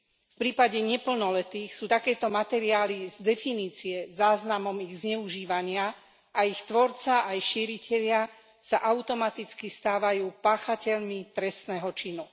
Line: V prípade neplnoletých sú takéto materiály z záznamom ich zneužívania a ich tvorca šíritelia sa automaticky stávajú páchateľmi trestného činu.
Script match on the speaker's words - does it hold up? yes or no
no